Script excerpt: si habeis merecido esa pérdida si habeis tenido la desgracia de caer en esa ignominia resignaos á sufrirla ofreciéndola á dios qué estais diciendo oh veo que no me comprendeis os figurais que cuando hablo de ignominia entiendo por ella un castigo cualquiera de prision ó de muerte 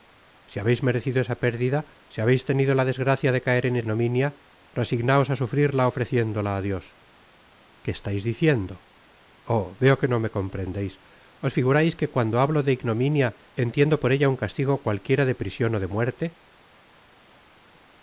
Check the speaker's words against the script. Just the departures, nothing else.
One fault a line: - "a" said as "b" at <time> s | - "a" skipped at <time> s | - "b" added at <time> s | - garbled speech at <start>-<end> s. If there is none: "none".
- "esa" skipped at 3.8 s